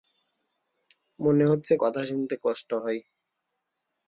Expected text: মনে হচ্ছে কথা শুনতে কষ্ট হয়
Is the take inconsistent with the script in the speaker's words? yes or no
no